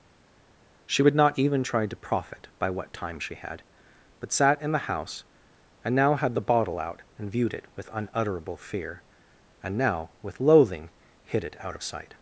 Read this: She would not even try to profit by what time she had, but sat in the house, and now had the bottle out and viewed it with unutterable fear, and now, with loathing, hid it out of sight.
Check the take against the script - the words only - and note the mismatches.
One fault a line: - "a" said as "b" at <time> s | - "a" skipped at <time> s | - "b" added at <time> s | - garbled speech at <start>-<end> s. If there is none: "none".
none